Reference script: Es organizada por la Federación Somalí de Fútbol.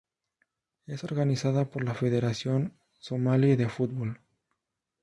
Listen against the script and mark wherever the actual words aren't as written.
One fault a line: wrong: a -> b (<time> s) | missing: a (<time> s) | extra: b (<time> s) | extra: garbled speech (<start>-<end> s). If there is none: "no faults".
no faults